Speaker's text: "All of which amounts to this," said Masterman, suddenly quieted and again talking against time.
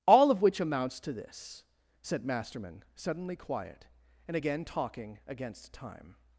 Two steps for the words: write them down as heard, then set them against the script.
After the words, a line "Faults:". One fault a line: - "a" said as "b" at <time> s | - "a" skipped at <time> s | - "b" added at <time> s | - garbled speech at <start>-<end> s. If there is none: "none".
"All of which amounts to this," said Masterman, suddenly quiet and again talking against time.
Faults:
- "quieted" said as "quiet" at 3.4 s